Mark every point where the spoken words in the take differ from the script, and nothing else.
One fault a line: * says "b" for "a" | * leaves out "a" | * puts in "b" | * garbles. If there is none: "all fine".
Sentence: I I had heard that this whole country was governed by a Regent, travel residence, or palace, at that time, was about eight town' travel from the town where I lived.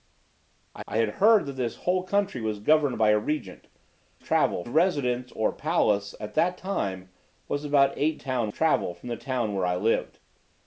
all fine